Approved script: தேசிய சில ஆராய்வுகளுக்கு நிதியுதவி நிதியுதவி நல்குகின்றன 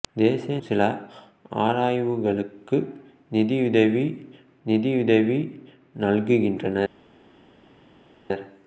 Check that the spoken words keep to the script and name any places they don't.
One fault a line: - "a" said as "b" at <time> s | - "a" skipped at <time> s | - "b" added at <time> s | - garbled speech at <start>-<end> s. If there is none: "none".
none